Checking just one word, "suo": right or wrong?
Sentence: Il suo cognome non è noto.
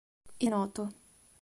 wrong